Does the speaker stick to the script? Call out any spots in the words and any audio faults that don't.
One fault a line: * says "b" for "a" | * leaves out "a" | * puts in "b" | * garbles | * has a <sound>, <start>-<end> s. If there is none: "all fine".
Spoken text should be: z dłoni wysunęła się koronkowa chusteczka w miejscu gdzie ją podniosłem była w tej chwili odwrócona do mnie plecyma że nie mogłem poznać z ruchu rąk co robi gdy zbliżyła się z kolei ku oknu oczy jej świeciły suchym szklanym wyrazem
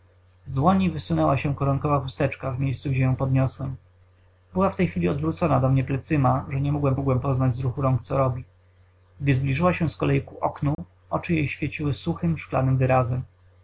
* puts in "mogłem"
* has a dropout, 10.7-10.8 s